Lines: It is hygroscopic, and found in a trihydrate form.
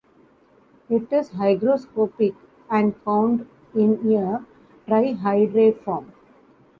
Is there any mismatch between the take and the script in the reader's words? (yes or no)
no